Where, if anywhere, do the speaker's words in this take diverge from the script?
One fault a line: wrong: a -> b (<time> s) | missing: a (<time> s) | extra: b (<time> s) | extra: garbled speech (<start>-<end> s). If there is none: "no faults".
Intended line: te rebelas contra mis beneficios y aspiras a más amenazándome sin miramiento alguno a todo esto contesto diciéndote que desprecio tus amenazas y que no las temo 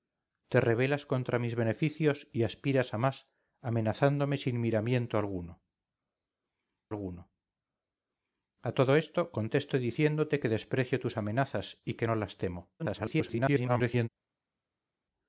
extra: alguno (6.9 s)
extra: garbled speech (12.8-14.1 s)